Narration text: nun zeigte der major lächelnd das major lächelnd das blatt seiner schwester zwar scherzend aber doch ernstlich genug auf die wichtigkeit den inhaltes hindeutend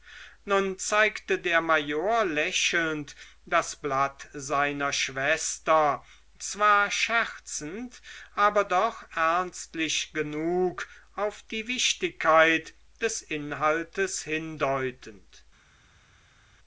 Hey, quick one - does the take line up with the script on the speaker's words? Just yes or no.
no